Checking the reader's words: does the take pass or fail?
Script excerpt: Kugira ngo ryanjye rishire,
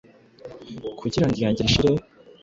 pass